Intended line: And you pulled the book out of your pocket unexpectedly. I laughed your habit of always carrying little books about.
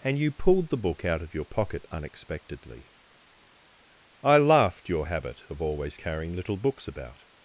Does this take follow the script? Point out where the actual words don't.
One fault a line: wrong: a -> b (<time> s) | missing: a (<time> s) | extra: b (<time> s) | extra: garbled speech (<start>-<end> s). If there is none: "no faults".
no faults